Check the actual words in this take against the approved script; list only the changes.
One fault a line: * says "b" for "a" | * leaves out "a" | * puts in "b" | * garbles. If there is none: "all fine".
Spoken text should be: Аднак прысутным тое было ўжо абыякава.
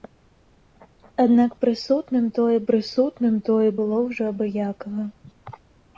* puts in "прысутным тое"